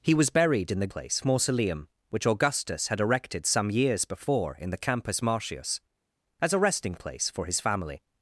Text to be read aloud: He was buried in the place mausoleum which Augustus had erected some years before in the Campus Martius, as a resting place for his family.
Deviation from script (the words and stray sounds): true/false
false